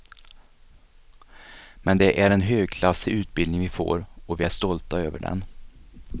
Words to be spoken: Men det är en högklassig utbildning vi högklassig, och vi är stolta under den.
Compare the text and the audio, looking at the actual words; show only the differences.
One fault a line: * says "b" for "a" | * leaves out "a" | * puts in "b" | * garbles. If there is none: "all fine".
* says "får" for "högklassig"
* says "över" for "under"